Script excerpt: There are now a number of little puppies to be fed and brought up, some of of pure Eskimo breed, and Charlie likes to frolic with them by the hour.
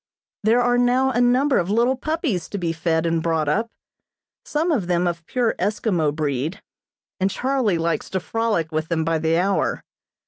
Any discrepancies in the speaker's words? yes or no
yes